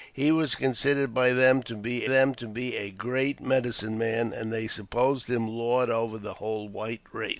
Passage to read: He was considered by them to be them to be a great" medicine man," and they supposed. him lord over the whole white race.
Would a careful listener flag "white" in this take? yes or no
no